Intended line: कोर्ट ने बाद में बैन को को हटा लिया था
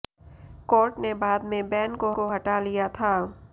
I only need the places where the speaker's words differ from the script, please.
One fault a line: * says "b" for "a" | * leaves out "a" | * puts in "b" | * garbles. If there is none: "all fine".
all fine